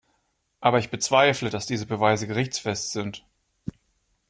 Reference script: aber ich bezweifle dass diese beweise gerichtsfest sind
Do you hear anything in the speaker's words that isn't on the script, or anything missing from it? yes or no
no